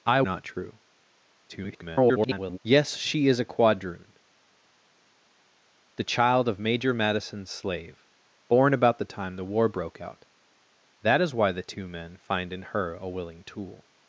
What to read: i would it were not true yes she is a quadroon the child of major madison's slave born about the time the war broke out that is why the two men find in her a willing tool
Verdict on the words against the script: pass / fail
fail